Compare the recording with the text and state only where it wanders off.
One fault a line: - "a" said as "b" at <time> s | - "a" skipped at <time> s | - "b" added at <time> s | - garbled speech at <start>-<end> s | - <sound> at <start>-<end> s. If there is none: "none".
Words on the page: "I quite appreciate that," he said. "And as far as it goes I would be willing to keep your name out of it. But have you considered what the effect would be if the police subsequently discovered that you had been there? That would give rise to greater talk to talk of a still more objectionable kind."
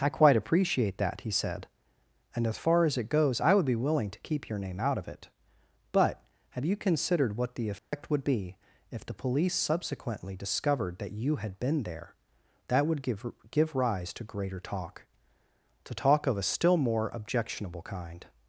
- dropout at 7.8-7.9 s
- "give" added at 13.5 s